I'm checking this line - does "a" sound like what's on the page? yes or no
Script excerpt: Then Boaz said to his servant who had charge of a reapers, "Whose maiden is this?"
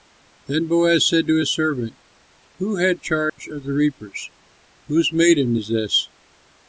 no